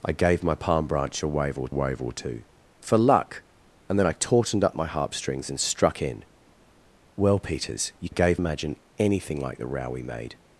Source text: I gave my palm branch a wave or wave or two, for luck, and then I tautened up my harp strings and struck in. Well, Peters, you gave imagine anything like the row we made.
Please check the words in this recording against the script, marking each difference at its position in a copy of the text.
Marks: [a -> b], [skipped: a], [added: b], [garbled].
I gave my palm branch a wave or wave or two, for luck, and then I tautened up my harp strings and struck in. Well, Peters, you gave imagine anything like the row we made.